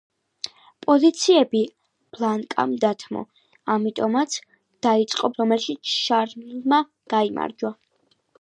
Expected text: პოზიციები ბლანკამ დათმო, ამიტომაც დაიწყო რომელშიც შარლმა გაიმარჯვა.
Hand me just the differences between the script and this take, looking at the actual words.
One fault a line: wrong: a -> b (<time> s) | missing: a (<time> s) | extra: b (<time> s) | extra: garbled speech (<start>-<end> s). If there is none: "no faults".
no faults